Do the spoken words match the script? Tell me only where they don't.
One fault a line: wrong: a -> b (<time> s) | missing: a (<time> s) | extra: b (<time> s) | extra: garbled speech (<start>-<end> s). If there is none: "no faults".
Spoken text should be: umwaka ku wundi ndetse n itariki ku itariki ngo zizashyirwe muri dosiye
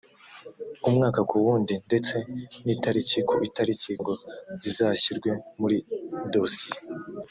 no faults